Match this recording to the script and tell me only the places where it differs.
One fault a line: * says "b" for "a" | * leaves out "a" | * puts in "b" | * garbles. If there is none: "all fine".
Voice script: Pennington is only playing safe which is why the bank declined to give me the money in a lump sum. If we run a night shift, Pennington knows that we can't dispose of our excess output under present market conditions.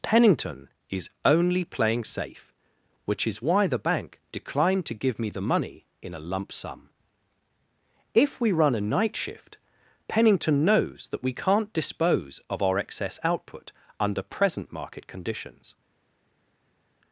all fine